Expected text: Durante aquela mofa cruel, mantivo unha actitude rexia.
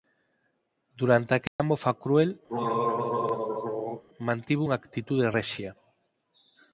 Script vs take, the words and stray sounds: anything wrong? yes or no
yes